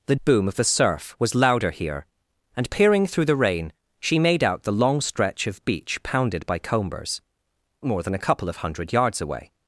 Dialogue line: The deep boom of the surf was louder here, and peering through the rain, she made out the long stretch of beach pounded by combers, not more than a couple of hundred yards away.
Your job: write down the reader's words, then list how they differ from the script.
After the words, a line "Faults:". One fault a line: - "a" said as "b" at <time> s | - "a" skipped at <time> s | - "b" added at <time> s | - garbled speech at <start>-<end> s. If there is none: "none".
The boom of the surf was louder here, and peering through the rain, she made out the long stretch of beach pounded by combers, more than a couple of hundred yards away.
Faults:
- "deep" skipped at 0.1 s
- "not" skipped at 7.2 s